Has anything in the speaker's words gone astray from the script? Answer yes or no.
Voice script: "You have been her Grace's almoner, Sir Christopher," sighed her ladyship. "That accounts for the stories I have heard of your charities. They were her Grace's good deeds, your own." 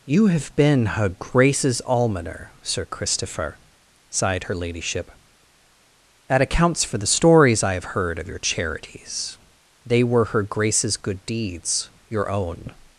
no